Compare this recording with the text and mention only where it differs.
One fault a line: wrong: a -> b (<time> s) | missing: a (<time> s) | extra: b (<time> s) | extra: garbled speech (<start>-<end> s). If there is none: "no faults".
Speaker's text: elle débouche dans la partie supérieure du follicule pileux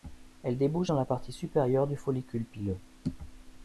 no faults